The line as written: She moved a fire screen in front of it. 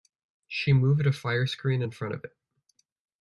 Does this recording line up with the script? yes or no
yes